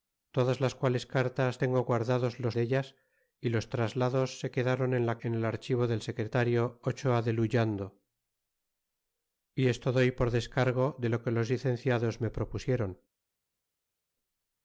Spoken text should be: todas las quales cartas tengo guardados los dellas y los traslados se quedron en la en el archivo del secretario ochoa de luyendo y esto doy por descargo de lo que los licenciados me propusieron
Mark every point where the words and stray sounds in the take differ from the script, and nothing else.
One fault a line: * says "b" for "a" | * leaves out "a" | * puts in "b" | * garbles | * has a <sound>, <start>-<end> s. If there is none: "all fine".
all fine